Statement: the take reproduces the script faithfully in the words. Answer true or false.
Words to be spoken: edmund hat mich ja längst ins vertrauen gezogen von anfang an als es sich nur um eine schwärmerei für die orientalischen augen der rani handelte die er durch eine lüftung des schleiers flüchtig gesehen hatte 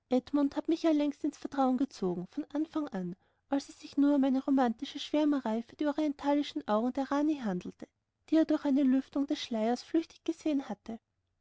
false